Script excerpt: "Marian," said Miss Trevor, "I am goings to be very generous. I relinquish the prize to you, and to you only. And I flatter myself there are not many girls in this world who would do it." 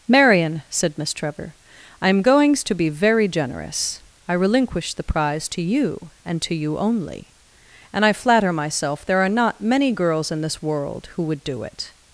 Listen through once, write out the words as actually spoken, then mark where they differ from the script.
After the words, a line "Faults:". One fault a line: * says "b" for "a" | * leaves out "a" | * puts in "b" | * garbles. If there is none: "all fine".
"Marian," said Miss Trevor, "I am goings to be very generous. I relinquish the prize to you, and to you only. And I flatter myself there are not many girls in this world who would do it."
Faults:
all fine